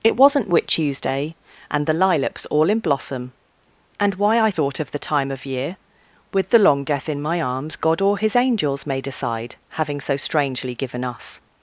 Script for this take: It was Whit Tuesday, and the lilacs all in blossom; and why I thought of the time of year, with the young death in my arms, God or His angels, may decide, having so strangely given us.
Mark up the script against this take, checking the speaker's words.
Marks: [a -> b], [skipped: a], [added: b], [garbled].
It [was -> wasn't] Whit Tuesday, and the lilacs all in blossom; and why I thought of the time of year, with the [young -> long] death in my arms, God or His angels, may decide, having so strangely given us.